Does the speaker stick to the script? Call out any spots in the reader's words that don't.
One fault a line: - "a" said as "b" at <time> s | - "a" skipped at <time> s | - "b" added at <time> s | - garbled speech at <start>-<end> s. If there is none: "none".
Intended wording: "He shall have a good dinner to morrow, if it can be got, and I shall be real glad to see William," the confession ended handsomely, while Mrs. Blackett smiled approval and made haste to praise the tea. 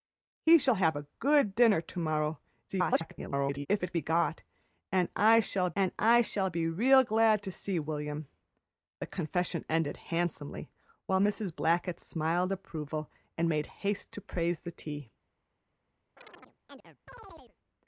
- garbled speech at 2.7-3.7 s
- "can" skipped at 3.9 s
- "and I shall" added at 5.8 s